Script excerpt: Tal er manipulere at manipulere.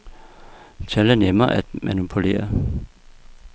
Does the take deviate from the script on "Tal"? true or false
false